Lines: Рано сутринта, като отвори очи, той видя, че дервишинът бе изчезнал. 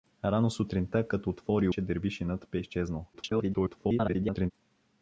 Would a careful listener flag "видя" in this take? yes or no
yes